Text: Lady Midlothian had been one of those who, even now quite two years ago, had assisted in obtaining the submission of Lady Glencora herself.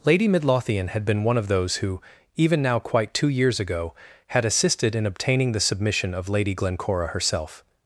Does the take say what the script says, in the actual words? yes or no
yes